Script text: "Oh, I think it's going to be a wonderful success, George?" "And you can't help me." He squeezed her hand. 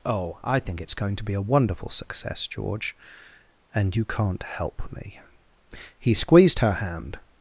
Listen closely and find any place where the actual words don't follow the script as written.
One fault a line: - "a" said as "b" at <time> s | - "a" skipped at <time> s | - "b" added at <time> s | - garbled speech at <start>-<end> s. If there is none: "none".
none